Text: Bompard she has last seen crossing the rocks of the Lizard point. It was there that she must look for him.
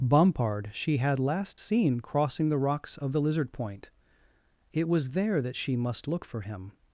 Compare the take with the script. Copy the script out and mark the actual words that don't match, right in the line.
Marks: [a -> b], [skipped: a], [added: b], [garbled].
Bompard she [has -> had] last seen crossing the rocks of the Lizard point. It was there that she must look for him.